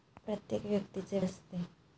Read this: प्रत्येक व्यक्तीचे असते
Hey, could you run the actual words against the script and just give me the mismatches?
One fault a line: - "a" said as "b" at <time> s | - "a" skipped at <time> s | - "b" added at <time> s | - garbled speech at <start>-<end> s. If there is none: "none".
none